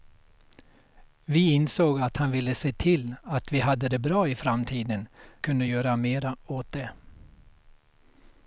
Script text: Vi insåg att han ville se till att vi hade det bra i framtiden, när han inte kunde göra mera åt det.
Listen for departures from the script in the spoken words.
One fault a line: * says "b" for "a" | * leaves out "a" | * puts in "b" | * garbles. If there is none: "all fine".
* leaves out "när han inte"